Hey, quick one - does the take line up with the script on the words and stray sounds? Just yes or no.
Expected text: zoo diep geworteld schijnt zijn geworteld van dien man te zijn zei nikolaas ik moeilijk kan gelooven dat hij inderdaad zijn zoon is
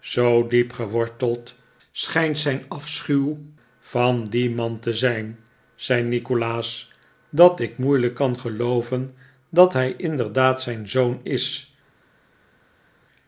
no